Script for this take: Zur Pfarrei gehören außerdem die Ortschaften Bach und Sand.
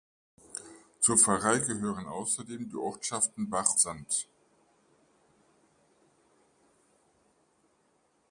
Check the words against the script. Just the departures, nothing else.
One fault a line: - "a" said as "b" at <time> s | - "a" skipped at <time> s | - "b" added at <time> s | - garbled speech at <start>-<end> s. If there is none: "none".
- "und" skipped at 3.8 s